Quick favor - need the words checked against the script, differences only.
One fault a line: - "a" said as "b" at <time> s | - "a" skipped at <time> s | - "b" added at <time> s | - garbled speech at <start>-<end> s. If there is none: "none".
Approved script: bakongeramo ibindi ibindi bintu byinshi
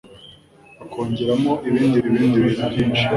none